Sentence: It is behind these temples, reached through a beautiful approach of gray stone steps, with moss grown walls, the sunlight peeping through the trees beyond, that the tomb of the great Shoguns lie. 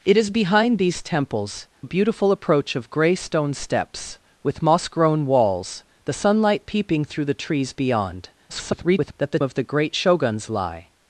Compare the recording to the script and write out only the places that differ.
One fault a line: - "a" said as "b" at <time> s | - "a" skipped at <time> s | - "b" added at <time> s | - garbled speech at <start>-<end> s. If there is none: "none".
- "reached through" skipped at 1.7 s
- garbled speech at 8.5-9.1 s
- "tomb" skipped at 9.4 s